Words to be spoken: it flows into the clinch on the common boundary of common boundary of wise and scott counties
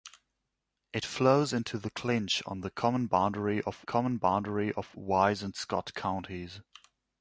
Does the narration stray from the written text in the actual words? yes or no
no